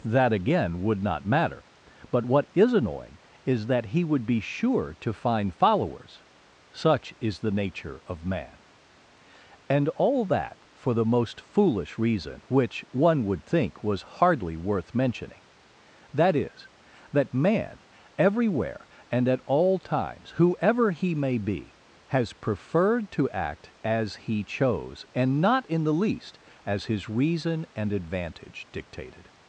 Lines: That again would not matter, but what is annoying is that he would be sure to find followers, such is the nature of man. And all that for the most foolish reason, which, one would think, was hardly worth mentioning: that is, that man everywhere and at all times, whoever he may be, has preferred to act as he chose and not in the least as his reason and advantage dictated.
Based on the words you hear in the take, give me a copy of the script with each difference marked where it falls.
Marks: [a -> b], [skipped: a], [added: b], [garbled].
That again would not matter, but what is annoying is that he would be sure to find followers, such is the nature of man. And all that for the most foolish reason, which, one would think, was hardly worth mentioning: that is, that man everywhere and at all times, whoever he may be, has preferred to act as he chose and not in the least as his reason and advantage dictated.